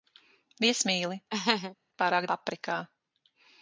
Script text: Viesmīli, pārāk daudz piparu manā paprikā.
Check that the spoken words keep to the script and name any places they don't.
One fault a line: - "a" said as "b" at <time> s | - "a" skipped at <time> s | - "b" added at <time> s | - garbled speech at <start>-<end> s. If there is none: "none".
- "daudz piparu manā" skipped at 2.3 s